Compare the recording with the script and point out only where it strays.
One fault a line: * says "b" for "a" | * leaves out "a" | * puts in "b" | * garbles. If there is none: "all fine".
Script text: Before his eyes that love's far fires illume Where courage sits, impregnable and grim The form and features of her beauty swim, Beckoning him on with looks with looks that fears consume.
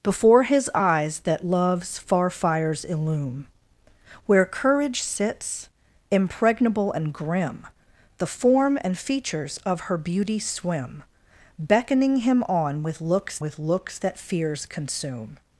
all fine